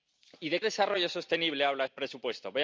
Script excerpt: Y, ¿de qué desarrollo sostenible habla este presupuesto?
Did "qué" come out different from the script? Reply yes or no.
yes